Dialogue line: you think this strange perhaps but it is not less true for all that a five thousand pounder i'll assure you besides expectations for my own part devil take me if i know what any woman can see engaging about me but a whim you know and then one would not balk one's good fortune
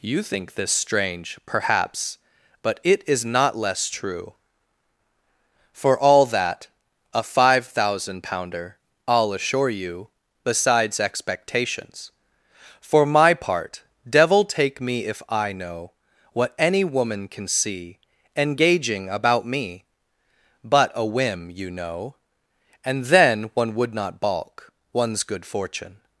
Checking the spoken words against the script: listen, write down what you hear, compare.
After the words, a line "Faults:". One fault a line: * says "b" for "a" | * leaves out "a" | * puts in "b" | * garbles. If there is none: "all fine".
you think this strange perhaps but it is not less true for all that a five thousand pounder i'll assure you besides expectations for my part devil take me if i know what any woman can see engaging about me but a whim you know and then one would not balk one's good fortune
Faults:
* leaves out "own"